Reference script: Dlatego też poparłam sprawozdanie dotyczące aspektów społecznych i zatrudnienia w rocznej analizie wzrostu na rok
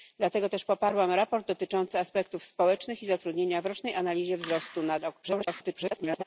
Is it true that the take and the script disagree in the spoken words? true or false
true